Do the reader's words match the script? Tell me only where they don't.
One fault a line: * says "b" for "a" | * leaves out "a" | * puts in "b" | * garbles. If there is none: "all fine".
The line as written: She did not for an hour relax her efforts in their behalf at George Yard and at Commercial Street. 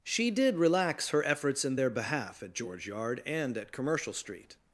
* leaves out "not for an hour"